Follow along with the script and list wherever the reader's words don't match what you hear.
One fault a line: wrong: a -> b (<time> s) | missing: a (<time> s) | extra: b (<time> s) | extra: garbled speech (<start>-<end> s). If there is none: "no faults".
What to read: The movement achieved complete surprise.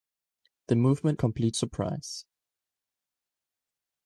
missing: achieved (1.2 s)